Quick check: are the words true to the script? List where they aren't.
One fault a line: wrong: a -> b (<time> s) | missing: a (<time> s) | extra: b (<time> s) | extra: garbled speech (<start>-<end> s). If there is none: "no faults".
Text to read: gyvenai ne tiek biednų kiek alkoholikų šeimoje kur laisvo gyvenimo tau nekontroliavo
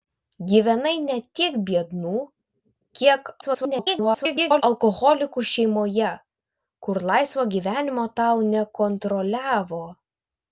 extra: garbled speech (3.4-4.6 s)